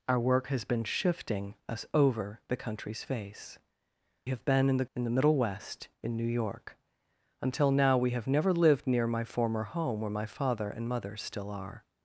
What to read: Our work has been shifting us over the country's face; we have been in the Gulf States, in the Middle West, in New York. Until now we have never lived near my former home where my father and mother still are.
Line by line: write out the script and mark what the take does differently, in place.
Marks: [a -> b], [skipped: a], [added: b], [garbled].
Our work has been shifting us over the country's face; [skipped: we] have been in the [skipped: Gulf States,] in the Middle West, in New York. Until now we have never lived near my former home where my father and mother still are.